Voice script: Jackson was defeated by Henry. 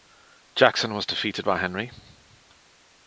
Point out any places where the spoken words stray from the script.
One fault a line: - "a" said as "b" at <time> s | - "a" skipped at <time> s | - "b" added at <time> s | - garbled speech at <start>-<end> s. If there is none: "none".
none